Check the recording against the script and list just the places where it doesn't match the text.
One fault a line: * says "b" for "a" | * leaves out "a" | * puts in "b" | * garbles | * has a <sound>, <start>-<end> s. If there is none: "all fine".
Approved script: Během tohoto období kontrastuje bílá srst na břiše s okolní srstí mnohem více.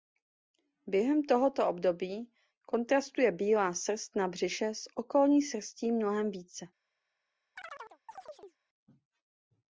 * has a chirp, 7.6-8.6 s